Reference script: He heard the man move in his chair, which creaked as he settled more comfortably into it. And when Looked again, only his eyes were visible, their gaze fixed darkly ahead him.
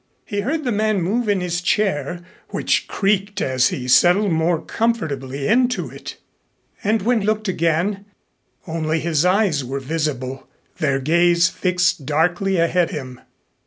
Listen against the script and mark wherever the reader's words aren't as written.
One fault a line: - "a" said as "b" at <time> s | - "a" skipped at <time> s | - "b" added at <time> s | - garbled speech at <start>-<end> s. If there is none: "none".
none